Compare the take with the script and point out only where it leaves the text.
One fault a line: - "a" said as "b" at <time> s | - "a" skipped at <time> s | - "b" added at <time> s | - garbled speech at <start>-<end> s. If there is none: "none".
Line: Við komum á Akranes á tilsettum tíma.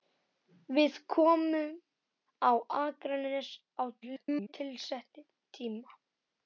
- garbled speech at 4.0-4.5 s